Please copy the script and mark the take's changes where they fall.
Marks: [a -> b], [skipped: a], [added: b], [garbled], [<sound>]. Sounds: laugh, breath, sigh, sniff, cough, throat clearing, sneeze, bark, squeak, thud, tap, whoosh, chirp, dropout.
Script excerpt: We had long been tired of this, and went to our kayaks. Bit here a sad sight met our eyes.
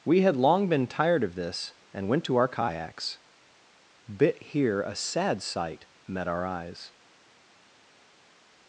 We had long been tired of this, and went to our kayaks. Bit here a sad sight met our eyes.